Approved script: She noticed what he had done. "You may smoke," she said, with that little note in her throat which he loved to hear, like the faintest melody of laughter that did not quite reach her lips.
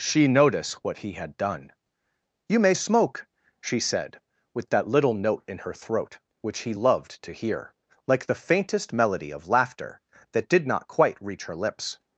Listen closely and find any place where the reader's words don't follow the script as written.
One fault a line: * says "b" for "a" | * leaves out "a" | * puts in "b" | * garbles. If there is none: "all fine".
* says "notice" for "noticed"